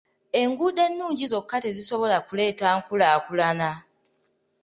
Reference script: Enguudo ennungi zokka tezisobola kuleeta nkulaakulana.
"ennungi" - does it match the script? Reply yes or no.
yes